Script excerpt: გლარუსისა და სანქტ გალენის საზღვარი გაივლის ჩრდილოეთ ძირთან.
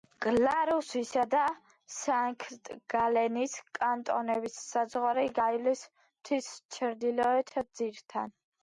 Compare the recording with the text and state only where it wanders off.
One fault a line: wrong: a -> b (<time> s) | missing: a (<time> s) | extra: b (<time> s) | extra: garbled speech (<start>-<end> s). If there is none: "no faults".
extra: კანტონების (3.8 s)
extra: მთის (6.0 s)